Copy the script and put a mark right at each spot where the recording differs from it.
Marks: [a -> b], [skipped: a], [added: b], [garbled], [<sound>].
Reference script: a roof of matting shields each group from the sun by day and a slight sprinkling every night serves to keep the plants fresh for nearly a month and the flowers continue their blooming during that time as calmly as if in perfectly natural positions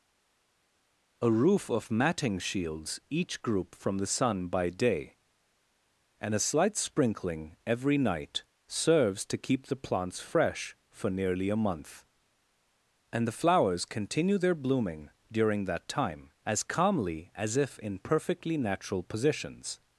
a roof of matting shields each group from the sun by day and a slight sprinkling every night serves to keep the plants fresh for nearly a month and the flowers continue their blooming during that time as calmly as if in perfectly natural positions